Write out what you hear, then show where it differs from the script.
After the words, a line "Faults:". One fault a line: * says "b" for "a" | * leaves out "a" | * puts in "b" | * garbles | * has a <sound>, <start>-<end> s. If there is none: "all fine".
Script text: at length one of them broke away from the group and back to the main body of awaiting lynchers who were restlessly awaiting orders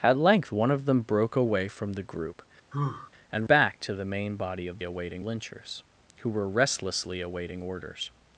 at length one of them broke away from the group and back to the main body of awaiting lynchers who were restlessly awaiting orders
Faults:
* has a sigh, 2.7-3.1 s